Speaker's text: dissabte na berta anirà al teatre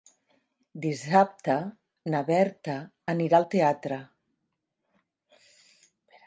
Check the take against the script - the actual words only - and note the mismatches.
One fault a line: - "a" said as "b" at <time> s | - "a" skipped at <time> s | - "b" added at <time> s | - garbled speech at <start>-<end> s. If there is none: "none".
none